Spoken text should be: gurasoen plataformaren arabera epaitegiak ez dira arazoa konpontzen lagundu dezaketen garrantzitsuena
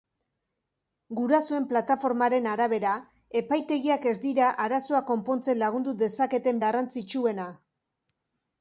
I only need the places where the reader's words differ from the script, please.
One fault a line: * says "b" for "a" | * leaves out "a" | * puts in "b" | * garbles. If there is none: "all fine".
all fine